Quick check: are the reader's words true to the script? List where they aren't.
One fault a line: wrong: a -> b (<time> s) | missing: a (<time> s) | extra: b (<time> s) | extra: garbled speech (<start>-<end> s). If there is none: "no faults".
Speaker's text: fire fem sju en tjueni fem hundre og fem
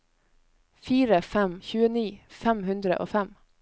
missing: sju en (1.5 s)